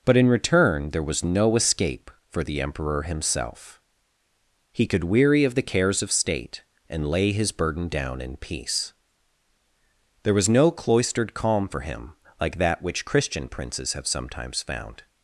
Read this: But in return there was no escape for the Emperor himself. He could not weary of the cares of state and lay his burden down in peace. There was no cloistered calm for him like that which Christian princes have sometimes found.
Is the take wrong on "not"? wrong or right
wrong